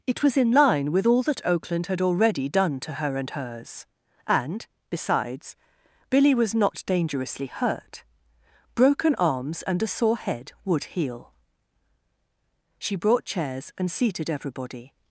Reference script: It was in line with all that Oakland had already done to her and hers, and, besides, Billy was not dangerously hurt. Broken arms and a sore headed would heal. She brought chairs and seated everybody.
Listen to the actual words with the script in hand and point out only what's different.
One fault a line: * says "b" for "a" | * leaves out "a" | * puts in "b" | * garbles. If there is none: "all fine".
* says "head" for "headed"